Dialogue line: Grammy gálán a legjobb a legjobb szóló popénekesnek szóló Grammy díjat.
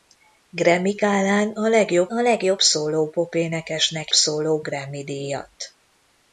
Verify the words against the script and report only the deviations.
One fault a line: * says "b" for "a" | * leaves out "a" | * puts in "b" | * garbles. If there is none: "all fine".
all fine